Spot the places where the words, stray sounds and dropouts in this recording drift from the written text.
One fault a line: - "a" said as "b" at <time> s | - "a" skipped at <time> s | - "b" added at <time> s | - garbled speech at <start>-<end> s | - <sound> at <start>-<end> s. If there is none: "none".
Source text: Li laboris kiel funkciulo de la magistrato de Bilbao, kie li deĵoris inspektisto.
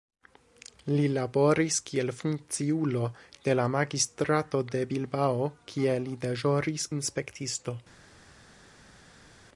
none